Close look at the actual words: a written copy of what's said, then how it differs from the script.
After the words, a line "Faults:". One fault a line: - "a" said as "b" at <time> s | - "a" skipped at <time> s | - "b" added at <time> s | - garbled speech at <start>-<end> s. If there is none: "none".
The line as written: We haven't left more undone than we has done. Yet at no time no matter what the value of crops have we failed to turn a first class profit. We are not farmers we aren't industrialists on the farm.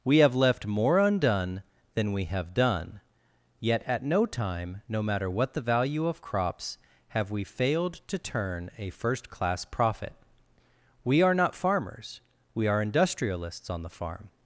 We have left more undone than we have done. Yet at no time no matter what the value of crops have we failed to turn a first class profit. We are not farmers we are industrialists on the farm.
Faults:
- "haven't" said as "have" at 0.2 s
- "has" said as "have" at 2.2 s
- "aren't" said as "are" at 12.7 s